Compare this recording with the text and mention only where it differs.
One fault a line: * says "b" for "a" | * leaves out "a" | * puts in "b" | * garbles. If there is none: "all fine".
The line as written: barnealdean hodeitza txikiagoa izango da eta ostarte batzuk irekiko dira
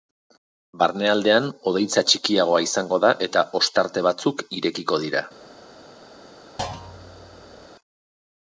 all fine